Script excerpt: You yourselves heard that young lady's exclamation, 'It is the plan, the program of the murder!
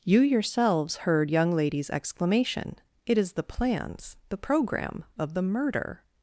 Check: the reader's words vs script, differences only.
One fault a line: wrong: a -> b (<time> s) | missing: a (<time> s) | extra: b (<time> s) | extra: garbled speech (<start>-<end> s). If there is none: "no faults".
missing: that (1.3 s)
wrong: plan -> plans (3.4 s)